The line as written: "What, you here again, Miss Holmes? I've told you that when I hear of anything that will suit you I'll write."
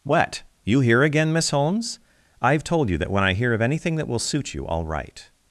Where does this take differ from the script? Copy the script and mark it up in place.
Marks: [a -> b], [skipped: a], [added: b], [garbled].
"What, you here again, Miss Holmes? I've told you that when I hear of anything that will suit you I'll write."